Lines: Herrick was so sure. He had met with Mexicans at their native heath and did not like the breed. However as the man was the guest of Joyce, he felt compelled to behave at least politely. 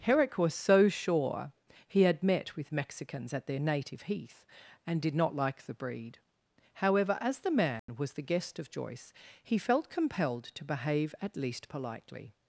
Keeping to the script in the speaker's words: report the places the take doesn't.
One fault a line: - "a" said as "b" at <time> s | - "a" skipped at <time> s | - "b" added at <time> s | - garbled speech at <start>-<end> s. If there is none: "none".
none